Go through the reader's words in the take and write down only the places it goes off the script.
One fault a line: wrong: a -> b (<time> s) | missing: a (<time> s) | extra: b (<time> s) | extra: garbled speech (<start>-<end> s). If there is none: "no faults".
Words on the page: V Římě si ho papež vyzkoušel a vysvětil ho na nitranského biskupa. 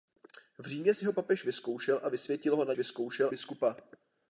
wrong: nitranského -> vyzkoušel (2.8 s)